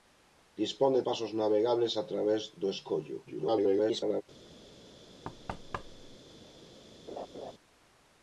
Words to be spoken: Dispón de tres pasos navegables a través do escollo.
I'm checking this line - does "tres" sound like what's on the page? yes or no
no